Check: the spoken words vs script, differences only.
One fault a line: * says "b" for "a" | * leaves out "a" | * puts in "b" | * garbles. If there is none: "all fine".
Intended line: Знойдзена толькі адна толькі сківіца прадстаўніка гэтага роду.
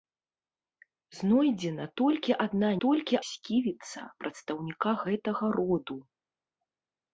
all fine